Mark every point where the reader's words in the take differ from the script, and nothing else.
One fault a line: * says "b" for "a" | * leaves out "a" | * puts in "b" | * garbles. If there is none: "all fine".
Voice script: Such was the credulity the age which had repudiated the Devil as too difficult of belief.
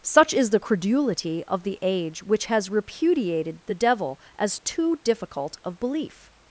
* says "is" for "was"
* puts in "of"
* says "has" for "had"